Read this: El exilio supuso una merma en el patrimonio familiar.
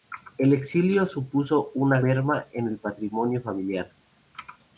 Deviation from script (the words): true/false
false